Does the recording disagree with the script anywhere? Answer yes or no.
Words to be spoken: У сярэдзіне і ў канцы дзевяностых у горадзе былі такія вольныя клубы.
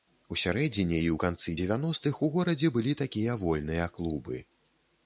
no